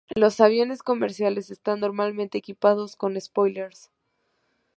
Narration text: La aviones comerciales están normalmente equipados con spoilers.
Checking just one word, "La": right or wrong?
wrong